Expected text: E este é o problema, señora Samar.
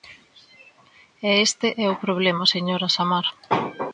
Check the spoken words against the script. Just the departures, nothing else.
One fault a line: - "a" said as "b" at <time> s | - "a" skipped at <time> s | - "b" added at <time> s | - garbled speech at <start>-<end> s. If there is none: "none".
none